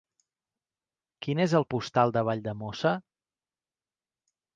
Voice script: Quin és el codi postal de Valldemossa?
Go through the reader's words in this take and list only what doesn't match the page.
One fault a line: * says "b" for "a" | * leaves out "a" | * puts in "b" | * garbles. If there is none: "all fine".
* leaves out "codi"